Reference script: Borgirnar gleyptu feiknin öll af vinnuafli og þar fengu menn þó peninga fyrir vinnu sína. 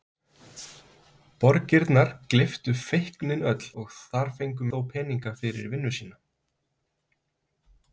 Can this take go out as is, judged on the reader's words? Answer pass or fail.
fail